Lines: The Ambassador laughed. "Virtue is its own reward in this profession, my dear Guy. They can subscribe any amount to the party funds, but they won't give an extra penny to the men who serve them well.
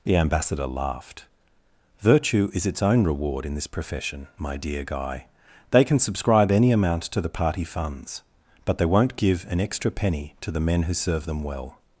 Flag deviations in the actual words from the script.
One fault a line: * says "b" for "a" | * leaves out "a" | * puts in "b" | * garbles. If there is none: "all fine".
all fine